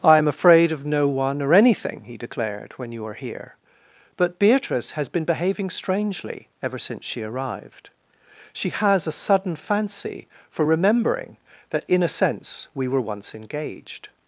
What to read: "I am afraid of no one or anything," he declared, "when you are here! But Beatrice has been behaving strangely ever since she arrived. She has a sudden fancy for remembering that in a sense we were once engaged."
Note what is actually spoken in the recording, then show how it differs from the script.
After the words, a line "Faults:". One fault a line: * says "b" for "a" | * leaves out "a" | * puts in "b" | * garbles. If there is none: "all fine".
"I am afraid of no one or anything," he declared, "when you are here! But Beatrice has been behaving strangely ever since she arrived. She has a sudden fancy for remembering that in a sense we were once engaged."
Faults:
all fine